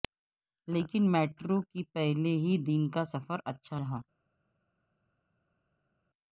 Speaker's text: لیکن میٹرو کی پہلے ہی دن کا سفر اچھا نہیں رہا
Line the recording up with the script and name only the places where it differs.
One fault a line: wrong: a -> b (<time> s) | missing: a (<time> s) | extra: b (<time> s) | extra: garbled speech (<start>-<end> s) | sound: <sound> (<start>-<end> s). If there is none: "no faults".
missing: نہیں (3.8 s)